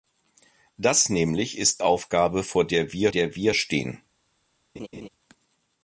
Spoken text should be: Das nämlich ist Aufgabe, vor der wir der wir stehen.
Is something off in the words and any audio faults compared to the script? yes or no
yes